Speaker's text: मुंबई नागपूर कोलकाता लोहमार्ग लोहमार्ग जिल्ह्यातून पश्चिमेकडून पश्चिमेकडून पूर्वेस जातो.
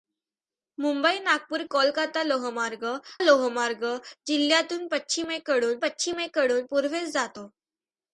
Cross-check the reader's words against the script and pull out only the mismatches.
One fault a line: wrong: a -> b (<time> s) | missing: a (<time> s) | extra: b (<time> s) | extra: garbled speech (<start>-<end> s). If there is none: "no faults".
no faults